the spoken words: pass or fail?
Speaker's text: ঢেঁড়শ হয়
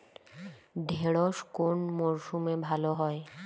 fail